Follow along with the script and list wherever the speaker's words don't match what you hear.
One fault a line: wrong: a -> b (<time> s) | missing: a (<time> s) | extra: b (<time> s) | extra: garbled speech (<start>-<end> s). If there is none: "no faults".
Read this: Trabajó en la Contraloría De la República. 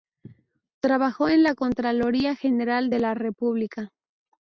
extra: General (2.4 s)